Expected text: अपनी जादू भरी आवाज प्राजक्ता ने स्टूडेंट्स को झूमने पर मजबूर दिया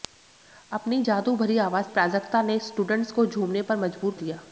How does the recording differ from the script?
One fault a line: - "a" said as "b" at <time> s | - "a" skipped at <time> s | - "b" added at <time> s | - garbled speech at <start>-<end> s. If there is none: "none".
none